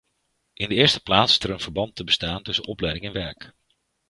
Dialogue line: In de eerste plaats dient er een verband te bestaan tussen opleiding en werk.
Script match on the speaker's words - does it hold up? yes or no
no